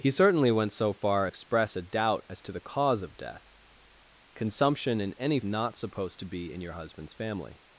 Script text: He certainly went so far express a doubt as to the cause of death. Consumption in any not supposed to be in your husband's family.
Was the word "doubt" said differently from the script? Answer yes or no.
no